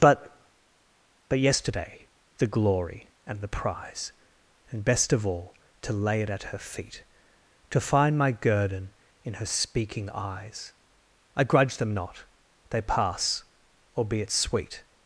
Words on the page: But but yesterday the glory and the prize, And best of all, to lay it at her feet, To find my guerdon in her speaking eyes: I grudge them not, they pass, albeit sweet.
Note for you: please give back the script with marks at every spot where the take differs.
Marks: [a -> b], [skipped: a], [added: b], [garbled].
But but yesterday the glory and the prize, And best of all, to lay it at her feet, To find my guerdon in her speaking eyes: I grudge them not, they pass, albeit sweet.